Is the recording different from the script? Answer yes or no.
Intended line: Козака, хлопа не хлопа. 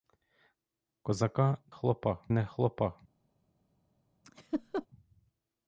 no